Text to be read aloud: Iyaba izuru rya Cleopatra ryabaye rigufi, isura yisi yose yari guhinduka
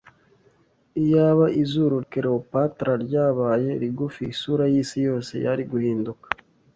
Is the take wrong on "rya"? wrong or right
wrong